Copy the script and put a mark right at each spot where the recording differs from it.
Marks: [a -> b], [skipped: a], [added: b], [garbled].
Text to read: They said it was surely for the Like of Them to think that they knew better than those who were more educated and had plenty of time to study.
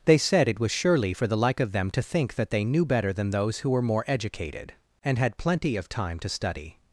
They said it was surely for the Like of Them to think that they knew better than those who were more educated and had plenty of time to study.